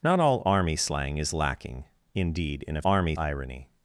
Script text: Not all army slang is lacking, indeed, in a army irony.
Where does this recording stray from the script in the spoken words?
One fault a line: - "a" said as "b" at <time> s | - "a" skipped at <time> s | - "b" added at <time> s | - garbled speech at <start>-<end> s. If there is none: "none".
none